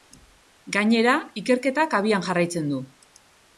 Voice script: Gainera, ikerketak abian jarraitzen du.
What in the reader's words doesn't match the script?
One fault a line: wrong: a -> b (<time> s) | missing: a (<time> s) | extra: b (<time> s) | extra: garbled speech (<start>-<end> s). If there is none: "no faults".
no faults